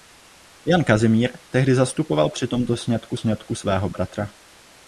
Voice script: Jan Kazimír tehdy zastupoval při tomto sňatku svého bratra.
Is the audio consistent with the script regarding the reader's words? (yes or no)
no